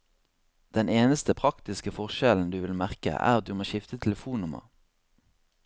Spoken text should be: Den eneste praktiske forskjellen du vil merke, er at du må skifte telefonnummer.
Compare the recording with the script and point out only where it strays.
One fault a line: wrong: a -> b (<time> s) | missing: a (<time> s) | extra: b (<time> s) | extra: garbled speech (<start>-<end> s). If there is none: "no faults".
no faults